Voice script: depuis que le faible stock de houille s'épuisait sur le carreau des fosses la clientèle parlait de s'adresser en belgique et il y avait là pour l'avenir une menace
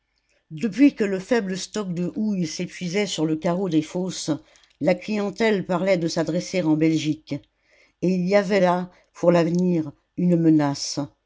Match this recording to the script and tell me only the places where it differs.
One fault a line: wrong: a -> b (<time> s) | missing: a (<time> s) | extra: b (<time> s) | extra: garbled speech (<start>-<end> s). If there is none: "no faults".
no faults